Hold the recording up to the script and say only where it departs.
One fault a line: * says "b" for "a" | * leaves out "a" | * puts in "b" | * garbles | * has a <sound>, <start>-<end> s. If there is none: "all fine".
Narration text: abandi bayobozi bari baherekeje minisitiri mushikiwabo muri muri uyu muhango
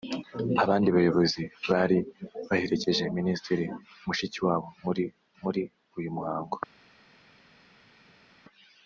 all fine